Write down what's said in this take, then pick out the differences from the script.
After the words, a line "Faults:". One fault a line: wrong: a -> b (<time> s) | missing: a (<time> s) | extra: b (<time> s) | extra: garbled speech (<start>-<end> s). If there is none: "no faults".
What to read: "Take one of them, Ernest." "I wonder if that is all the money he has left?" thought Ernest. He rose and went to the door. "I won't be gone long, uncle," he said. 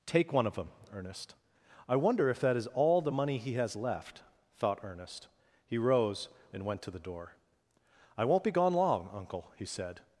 "Take one of them, Ernest." "I wonder if that is all the money he has left?" thought Ernest. He rose and went to the door. "I won't be gone long, uncle," he said.
Faults:
no faults